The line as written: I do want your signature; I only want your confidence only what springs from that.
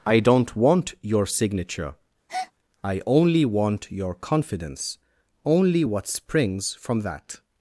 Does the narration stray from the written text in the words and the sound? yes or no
yes